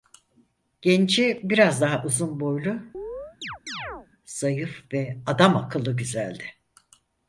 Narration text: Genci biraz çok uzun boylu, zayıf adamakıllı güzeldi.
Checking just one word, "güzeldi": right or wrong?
right